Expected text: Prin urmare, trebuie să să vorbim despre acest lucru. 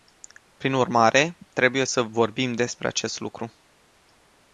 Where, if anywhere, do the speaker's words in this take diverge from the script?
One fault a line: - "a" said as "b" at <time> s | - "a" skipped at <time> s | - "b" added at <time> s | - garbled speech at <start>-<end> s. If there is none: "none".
- "să" skipped at 2.0 s